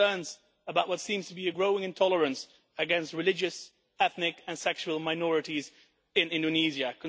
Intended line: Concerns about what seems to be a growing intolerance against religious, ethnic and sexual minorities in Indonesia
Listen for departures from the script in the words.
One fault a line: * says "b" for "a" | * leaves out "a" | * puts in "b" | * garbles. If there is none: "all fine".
all fine